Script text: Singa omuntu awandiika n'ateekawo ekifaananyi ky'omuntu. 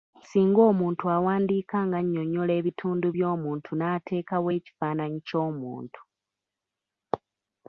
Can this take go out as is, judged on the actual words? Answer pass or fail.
fail